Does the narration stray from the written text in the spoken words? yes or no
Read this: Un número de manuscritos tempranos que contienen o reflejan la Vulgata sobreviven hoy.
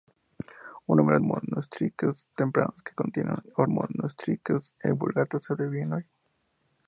yes